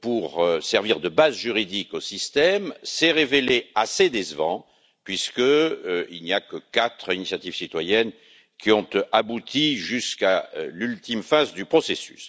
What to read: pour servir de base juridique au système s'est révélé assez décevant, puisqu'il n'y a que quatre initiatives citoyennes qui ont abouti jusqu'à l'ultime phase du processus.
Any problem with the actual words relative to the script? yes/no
no